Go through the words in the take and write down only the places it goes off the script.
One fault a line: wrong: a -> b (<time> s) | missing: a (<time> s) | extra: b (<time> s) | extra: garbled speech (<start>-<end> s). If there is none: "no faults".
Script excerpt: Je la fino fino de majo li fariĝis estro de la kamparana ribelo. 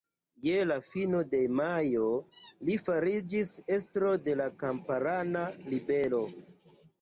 missing: fino (1.2 s)